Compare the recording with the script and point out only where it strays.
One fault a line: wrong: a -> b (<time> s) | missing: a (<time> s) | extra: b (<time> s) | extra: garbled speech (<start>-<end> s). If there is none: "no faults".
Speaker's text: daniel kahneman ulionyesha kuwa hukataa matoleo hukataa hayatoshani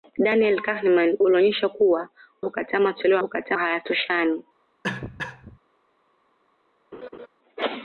no faults